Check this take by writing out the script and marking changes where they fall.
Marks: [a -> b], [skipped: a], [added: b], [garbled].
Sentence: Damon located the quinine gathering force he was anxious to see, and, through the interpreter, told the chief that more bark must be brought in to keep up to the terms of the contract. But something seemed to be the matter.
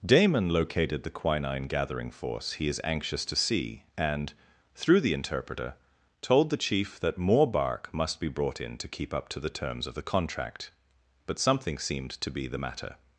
Damon located the quinine gathering force he [was -> is] anxious to see, and, through the interpreter, told the chief that more bark must be brought in to keep up to the terms of the contract. But something seemed to be the matter.